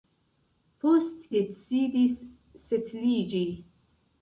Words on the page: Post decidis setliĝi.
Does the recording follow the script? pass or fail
pass